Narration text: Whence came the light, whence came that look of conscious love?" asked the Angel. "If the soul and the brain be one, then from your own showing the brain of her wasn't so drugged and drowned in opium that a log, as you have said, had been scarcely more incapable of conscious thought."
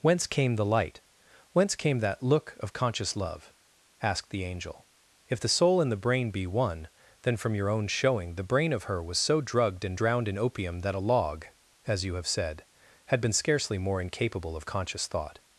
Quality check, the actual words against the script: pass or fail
fail